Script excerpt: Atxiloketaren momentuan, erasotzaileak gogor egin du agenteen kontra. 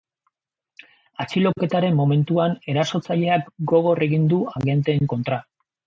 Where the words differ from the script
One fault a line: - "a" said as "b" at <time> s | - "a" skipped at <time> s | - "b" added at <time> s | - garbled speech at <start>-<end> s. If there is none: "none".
none